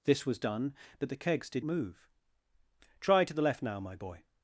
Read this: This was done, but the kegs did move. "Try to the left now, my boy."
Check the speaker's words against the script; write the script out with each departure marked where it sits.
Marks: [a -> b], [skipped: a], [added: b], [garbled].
This was done, but the kegs did move. "Try to the left now, my boy."